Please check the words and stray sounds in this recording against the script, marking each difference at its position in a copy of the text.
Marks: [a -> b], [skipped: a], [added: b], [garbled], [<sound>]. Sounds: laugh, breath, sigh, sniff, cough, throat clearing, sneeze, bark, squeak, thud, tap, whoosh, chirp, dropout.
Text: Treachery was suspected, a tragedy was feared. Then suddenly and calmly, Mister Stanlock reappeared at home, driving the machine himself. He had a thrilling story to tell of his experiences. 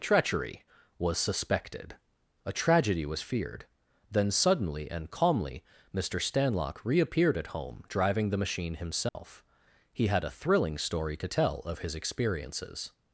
Treachery was suspected, a tragedy was feared. Then suddenly and calmly, Mister Stanlock reappeared at home, driving the machine himself. [dropout] He had a thrilling story to tell of his experiences.